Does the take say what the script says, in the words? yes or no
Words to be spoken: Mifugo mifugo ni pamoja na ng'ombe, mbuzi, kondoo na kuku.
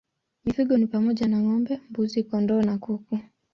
no